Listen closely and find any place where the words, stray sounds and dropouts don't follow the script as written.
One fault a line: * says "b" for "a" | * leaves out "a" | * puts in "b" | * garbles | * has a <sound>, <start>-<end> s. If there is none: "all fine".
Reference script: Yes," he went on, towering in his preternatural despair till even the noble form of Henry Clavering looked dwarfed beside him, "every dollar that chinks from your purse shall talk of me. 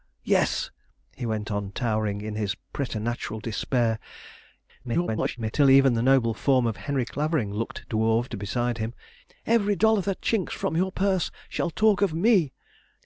* garbles